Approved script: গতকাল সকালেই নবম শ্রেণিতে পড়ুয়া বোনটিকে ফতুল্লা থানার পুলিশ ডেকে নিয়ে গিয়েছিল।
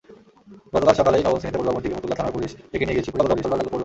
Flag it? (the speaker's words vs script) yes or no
yes